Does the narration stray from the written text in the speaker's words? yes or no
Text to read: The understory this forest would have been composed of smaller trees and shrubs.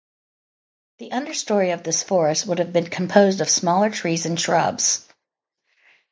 yes